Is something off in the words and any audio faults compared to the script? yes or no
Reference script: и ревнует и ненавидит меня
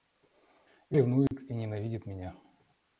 yes